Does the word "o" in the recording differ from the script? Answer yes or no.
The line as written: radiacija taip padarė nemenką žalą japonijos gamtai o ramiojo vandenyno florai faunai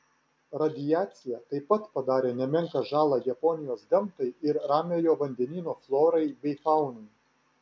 yes